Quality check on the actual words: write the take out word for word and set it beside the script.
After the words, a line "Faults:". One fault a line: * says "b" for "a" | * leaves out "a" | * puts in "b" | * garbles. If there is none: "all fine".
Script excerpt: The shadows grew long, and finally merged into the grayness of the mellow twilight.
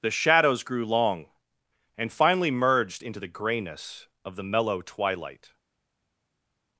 The shadows grew long, and finally merged into the grayness of the mellow twilight.
Faults:
all fine